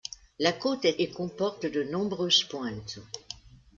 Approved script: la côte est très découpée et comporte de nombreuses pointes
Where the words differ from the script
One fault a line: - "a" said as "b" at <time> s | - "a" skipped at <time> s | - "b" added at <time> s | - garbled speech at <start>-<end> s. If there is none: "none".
- "très découpée" skipped at 1.0 s